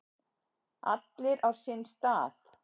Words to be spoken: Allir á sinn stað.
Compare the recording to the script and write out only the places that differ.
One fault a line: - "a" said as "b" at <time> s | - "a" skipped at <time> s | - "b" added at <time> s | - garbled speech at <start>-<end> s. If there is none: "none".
none